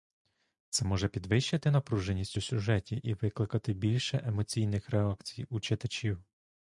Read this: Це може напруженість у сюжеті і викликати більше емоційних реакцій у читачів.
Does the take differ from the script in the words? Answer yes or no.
yes